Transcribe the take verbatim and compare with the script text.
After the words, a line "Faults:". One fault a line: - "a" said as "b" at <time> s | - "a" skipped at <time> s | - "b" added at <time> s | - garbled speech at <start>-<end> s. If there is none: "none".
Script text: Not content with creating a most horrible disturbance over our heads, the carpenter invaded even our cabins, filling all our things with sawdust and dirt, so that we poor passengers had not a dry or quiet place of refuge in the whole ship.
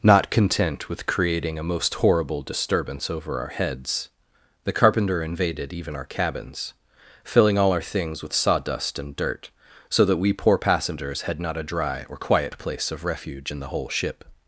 Not content with creating a most horrible disturbance over our heads, the carpenter invaded even our cabins, filling all our things with sawdust and dirt, so that we poor passengers had not a dry or quiet place of refuge in the whole ship.
Faults:
none